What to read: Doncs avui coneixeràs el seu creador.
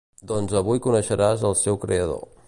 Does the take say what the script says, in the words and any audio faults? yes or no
yes